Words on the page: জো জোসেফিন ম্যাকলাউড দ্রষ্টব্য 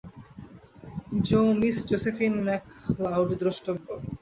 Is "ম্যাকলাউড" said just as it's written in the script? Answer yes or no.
yes